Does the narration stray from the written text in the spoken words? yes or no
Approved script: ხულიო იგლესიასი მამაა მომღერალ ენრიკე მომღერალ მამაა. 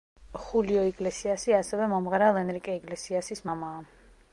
yes